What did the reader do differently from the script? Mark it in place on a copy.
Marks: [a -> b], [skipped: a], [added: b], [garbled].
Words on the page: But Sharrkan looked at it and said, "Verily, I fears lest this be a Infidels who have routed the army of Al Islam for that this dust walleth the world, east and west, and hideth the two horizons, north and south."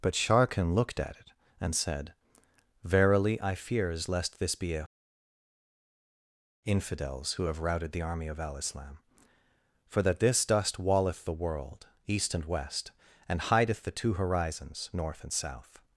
But Sharrkan looked at it and said, "Verily, I fears lest this be a Infidels who have routed the army of Al Islam for that this dust walleth the world, east and west, and hideth the two horizons, north and south."